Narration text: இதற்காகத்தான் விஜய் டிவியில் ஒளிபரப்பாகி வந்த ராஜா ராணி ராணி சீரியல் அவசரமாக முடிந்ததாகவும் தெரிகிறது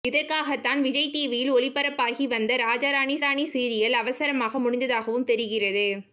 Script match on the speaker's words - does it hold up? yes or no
yes